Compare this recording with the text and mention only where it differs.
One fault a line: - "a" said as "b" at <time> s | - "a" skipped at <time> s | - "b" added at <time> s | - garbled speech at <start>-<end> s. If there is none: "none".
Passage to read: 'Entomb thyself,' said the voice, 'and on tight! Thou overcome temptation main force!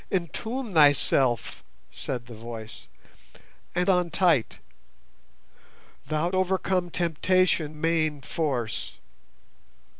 none